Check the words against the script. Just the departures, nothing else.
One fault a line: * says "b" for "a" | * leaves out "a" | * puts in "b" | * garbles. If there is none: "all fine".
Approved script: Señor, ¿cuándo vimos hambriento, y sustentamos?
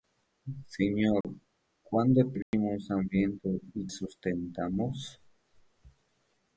all fine